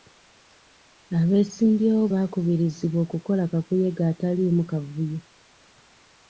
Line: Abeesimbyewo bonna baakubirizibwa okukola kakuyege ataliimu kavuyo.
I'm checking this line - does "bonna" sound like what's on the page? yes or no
no